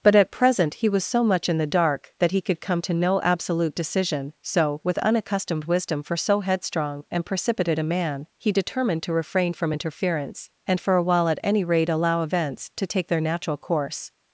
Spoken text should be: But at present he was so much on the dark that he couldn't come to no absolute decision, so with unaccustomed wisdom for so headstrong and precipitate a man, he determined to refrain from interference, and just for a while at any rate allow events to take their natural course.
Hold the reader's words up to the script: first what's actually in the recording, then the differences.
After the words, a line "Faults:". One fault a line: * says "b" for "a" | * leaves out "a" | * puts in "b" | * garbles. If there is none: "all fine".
But at present he was so much in the dark that he could come to no absolute decision, so with unaccustomed wisdom for so headstrong and precipitate a man, he determined to refrain from interference, and for a while at any rate allow events to take their natural course.
Faults:
* says "in" for "on"
* says "could" for "couldn't"
* leaves out "just"